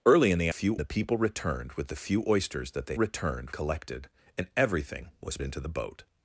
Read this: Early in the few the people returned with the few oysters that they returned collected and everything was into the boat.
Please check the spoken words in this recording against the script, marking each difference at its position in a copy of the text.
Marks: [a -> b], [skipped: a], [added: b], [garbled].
Early in the few the people returned with the few oysters that they returned collected and everything was into the boat.